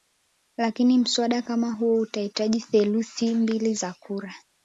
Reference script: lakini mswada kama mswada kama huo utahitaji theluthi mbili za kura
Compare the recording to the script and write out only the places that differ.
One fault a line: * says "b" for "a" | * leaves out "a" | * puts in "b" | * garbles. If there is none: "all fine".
* leaves out "mswada kama"